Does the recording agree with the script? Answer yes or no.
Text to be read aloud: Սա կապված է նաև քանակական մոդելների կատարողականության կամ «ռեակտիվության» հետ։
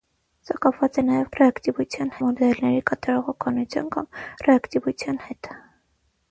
no